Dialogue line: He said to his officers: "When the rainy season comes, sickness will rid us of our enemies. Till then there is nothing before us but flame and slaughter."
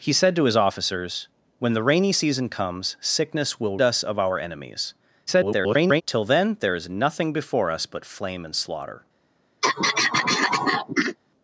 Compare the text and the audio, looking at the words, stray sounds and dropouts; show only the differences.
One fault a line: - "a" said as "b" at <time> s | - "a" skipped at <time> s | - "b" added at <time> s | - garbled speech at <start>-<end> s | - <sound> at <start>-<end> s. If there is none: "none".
- "rid" skipped at 3.8 s
- garbled speech at 5.3-6.0 s
- throat clearing at 9.6-11.2 s